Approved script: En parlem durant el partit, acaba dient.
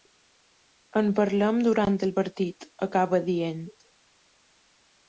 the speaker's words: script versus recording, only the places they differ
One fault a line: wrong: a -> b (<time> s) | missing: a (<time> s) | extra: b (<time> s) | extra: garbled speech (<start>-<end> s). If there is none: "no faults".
no faults